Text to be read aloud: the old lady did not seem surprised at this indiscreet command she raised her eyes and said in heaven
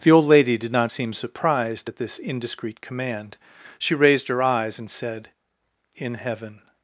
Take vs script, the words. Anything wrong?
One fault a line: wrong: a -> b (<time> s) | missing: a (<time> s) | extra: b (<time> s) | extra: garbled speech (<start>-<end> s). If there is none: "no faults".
no faults